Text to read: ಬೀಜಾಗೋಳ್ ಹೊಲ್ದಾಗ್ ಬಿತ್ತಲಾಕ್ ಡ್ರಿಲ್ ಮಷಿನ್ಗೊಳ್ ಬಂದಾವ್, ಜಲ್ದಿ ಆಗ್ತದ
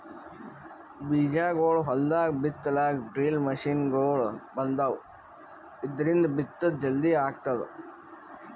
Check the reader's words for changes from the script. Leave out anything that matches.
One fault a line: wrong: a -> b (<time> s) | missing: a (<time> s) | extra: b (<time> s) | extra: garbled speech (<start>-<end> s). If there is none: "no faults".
extra: ಇದ್ರಿಂದ್ ಬಿತ್ತದ್ (5.8 s)